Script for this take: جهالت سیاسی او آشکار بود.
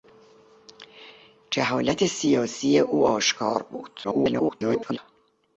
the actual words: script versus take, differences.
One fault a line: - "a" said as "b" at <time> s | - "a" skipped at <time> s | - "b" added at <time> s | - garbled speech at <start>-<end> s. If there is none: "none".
- garbled speech at 4.0-5.0 s